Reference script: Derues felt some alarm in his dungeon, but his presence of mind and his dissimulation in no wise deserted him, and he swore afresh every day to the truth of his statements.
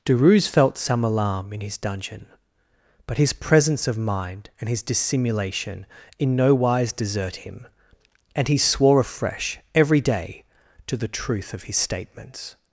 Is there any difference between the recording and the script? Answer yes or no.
yes